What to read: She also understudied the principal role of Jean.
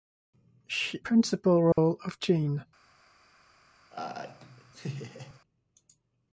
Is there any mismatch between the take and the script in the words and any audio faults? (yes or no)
yes